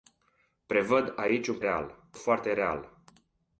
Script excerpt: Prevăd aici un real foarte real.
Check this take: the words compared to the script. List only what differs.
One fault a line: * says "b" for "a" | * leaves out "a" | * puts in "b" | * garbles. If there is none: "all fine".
all fine